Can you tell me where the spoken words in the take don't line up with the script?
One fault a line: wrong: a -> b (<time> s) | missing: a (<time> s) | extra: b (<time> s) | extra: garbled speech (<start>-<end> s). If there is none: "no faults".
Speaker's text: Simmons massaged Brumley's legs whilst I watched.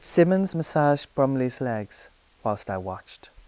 no faults